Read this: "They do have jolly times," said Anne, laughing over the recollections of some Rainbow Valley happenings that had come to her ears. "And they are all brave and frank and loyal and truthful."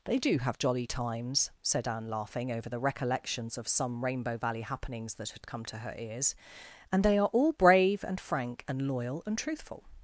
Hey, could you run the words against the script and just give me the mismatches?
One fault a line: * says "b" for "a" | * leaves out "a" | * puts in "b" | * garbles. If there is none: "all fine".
all fine